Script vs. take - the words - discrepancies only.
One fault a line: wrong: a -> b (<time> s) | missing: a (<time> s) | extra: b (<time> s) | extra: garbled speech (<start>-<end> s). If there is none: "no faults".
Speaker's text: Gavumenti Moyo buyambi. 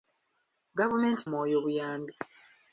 no faults